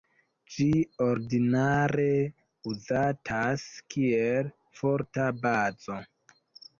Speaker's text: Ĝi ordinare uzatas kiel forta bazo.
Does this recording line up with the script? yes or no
yes